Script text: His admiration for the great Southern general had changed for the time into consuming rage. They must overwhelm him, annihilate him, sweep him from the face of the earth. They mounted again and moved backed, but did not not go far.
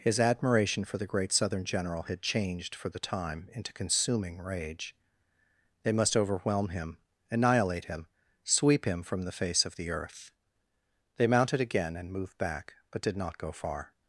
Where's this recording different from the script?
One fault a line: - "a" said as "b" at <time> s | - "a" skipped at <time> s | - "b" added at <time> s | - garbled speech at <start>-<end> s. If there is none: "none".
- "backed" said as "back" at 12.4 s
- "not" skipped at 13.4 s